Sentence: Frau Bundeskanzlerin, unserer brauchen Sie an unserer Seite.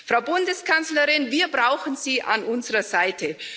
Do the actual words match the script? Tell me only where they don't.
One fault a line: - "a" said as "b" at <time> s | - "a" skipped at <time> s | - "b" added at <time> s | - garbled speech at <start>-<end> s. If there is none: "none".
- "unserer" said as "wir" at 1.3 s